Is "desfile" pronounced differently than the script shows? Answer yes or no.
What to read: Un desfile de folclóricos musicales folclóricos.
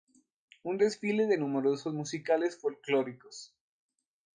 no